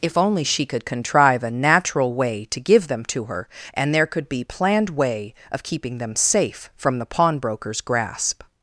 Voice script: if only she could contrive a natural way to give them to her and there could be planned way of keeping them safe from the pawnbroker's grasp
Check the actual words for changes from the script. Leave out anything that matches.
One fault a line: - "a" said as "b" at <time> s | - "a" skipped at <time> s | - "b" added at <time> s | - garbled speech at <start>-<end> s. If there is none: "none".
none